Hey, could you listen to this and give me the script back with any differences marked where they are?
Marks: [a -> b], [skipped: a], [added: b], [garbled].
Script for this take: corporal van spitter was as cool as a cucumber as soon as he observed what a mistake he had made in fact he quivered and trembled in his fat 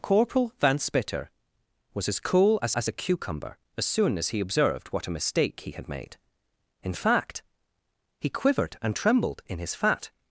corporal van spitter was as cool as [added: as] a cucumber as soon as he observed what a mistake he had made in fact he quivered and trembled in his fat